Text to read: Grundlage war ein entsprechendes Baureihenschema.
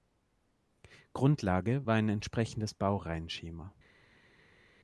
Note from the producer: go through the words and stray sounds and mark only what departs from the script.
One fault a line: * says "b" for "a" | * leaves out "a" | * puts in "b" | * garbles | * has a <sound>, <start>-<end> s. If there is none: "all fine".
all fine